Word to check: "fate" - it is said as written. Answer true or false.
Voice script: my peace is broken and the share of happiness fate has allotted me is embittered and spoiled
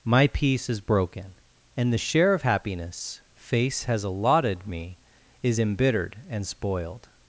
false